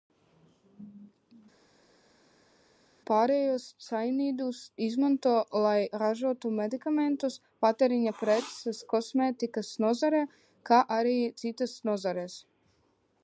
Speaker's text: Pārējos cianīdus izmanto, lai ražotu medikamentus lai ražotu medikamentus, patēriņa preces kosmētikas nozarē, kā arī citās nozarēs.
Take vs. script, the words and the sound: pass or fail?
fail